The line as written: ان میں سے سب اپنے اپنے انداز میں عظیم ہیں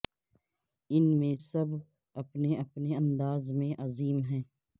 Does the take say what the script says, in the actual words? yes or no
no